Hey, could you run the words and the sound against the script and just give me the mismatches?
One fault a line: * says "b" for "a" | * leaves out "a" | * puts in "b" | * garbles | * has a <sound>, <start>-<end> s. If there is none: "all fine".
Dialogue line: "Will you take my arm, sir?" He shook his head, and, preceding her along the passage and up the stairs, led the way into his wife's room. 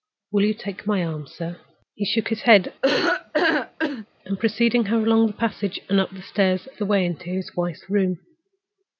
* has a laugh, 2.8-4.1 s
* leaves out "led"